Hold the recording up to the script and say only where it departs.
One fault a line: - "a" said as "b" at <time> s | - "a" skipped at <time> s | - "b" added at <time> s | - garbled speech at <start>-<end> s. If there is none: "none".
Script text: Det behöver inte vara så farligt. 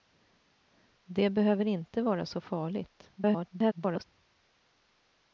- garbled speech at 3.2-4.0 s